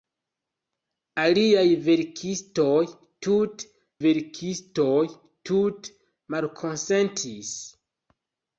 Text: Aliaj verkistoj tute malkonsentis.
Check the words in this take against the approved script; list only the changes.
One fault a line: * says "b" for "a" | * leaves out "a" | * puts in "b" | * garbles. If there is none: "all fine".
* puts in "verkistoj tute"